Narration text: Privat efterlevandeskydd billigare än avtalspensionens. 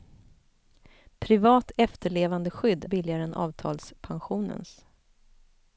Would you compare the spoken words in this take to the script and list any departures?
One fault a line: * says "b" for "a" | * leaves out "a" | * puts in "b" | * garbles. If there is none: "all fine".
all fine